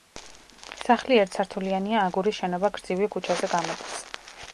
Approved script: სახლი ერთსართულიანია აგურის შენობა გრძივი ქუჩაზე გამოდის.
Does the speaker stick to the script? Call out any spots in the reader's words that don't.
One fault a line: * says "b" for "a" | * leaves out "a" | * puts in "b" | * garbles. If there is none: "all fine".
all fine